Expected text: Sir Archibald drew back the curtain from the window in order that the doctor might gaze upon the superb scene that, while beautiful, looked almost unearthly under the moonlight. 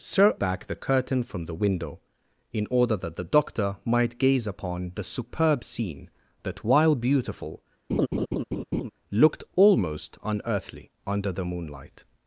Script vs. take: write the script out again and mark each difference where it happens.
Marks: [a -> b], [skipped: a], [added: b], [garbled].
Sir [skipped: Archibald drew] back the curtain from the window in order that the doctor might gaze upon the superb scene that, while beautiful, looked almost unearthly under the moonlight.